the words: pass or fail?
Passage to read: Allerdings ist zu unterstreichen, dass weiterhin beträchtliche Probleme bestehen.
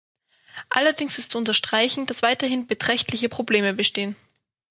pass